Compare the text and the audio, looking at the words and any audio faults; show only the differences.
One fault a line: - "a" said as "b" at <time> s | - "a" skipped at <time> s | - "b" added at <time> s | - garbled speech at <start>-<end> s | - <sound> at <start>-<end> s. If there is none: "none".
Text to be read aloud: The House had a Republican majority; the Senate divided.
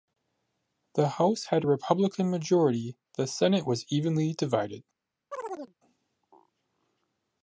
- "was evenly" added at 3.7 s
- chirp at 5.3-5.7 s